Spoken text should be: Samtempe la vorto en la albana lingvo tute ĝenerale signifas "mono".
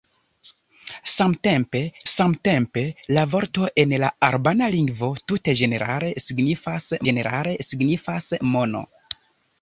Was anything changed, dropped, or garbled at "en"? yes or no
no